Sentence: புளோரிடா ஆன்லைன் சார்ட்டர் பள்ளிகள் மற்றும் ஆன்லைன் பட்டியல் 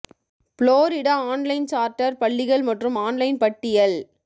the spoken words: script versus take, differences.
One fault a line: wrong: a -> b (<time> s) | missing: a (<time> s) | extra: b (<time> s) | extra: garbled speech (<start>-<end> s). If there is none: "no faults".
no faults